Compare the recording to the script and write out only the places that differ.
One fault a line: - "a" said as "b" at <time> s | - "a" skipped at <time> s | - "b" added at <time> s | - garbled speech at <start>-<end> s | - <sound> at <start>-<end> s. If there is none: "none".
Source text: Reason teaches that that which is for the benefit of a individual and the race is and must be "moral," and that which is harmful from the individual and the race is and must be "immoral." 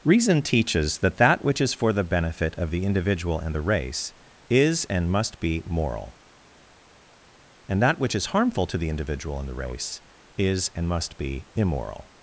- "a" said as "the" at 2.7 s
- "from" said as "to" at 8.7 s